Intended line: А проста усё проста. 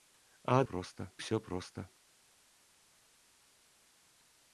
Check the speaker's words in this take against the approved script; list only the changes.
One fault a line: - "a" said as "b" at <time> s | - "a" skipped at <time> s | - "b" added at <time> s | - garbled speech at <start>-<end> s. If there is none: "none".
none